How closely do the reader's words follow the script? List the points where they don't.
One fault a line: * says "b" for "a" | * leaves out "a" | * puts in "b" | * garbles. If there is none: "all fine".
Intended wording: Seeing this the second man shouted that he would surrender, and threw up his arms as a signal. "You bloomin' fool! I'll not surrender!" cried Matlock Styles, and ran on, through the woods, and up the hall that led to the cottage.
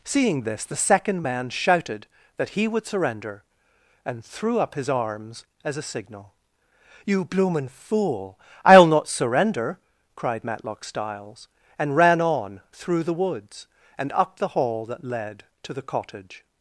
all fine